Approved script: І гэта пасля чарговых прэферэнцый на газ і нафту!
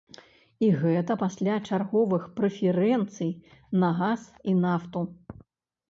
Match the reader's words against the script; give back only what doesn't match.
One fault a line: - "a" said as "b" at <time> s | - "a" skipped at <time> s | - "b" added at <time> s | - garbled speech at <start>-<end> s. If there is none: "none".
none